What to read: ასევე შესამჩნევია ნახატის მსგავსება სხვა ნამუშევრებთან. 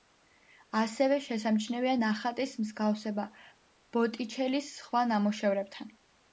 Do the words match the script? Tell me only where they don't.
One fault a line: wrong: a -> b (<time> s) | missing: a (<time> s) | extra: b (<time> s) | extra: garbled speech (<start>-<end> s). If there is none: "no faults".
extra: ბოტიჩელის (4.0 s)